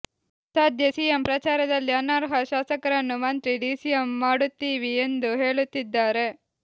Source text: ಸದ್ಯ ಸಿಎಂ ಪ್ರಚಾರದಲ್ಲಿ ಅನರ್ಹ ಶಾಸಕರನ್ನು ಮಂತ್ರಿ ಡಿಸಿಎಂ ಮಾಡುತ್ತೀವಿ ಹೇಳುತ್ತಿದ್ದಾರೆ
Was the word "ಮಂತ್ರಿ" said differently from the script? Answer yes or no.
no